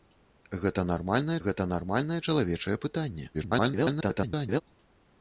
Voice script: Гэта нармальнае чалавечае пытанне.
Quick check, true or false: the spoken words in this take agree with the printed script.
false